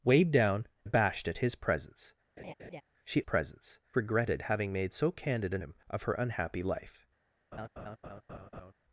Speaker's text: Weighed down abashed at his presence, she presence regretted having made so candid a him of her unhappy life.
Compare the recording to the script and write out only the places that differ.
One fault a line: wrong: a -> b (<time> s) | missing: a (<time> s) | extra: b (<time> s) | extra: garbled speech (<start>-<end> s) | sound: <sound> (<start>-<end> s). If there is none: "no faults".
sound: laugh (2.4-2.8 s)
sound: laugh (7.5-8.7 s)